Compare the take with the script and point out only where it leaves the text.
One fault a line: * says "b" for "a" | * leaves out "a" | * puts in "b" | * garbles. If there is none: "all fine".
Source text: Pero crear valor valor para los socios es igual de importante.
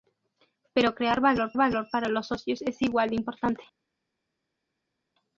all fine